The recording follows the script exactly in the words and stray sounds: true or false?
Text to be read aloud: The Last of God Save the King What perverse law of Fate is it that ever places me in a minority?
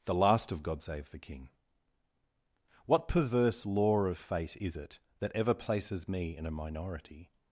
true